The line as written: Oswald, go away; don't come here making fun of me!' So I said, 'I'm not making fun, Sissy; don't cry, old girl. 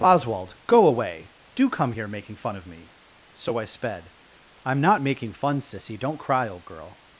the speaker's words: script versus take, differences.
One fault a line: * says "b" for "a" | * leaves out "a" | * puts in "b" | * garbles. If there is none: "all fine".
* says "do" for "don't"
* says "sped" for "said"